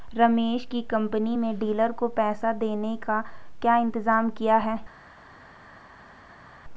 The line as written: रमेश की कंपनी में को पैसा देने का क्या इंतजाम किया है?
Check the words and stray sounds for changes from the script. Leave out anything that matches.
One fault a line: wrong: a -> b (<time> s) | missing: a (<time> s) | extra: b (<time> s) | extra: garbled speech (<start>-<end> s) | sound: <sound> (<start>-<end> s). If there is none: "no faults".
extra: डीलर (1.6 s)